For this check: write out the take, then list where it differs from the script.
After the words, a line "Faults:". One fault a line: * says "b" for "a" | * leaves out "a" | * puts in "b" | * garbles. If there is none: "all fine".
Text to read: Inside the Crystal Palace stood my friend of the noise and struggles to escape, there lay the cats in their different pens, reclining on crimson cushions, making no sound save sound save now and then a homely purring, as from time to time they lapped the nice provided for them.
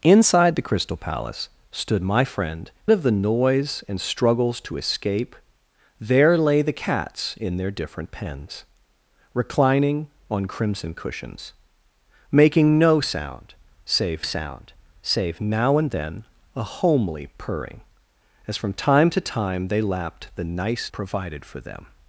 Inside the Crystal Palace stood my friend of the noise and struggles to escape, there lay the cats in their different pens, reclining on crimson cushions, making no sound save sound save now and then a homely purring, as from time to time they lapped the nice provided for them.
Faults:
all fine